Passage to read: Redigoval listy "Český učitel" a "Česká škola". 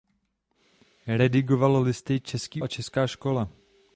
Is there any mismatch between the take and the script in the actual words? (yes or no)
yes